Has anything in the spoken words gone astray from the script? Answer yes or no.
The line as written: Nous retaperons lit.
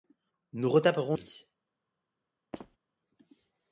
no